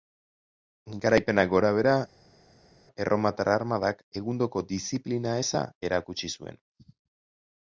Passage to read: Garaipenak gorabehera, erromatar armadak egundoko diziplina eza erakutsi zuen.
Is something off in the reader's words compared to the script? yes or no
no